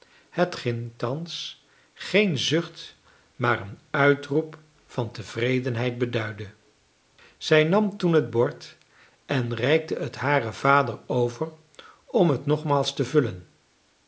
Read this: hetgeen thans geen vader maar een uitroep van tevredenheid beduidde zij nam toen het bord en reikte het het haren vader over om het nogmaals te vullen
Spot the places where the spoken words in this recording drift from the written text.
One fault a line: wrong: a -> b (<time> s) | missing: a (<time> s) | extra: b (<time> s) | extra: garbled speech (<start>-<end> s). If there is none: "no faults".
wrong: vader -> zucht (2.4 s)
missing: het (10.2 s)